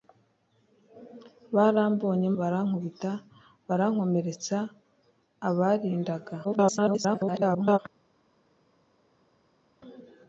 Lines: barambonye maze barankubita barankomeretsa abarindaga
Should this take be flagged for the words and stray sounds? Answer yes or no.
yes